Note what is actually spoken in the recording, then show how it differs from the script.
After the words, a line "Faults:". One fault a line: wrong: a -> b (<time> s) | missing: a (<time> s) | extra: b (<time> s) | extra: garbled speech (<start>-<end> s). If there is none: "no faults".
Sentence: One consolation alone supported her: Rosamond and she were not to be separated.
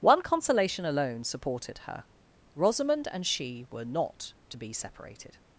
One consolation alone supported her: Rosamond and she were not to be separated.
Faults:
no faults